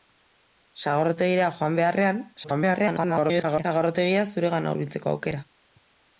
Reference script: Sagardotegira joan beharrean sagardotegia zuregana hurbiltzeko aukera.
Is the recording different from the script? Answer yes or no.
yes